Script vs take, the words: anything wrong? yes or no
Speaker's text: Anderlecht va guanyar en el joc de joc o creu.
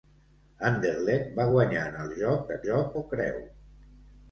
no